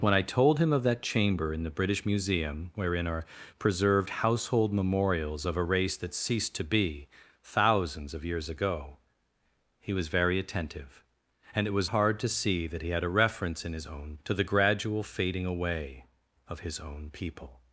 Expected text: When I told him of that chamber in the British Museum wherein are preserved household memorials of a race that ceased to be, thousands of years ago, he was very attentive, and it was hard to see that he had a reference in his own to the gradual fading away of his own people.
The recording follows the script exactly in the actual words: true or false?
true